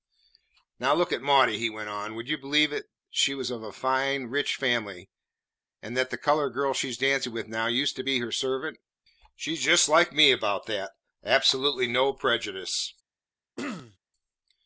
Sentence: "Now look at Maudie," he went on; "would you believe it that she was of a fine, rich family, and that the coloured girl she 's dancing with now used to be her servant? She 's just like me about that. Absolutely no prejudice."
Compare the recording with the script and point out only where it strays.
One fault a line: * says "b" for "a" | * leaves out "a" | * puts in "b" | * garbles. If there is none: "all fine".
all fine